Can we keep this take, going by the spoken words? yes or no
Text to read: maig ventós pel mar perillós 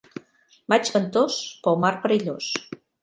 yes